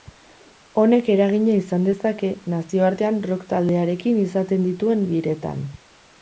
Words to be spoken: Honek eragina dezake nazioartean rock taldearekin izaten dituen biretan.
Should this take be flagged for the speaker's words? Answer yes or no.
yes